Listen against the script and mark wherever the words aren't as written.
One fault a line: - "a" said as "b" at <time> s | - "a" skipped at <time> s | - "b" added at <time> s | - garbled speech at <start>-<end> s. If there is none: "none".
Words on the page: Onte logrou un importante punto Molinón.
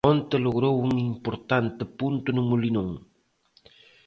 - "no" added at 2.3 s